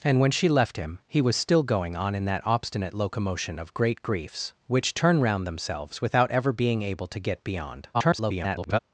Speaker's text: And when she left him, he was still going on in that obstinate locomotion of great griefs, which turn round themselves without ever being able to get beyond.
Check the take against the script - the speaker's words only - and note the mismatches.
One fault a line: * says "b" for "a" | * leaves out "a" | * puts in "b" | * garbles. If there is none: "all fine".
* garbles